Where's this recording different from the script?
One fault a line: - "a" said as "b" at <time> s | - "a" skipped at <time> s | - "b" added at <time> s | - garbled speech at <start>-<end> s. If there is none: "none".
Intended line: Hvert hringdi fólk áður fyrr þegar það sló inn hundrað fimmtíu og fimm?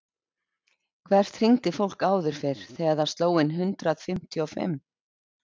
none